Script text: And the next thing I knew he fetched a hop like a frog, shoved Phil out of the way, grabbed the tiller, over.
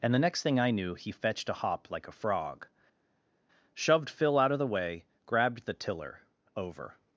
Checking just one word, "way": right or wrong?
right